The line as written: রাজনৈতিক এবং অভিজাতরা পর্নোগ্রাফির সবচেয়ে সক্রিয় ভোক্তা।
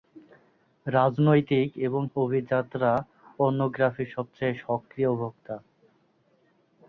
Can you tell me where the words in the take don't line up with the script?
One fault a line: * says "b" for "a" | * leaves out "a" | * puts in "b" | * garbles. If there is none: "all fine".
all fine